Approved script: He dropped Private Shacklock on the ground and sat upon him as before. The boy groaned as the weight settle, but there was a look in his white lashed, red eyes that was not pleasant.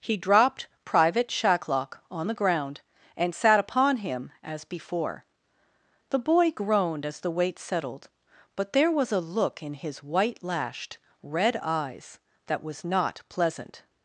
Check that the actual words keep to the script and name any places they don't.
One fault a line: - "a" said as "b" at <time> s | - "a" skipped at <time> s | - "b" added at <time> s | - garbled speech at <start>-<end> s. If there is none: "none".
- "settle" said as "settled" at 7.6 s